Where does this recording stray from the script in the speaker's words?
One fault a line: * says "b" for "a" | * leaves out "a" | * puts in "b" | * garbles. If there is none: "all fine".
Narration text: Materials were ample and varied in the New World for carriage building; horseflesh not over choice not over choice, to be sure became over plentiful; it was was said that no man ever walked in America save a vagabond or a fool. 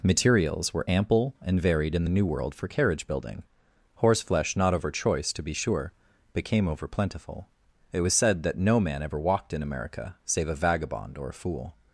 * leaves out "not over choice"
* leaves out "was"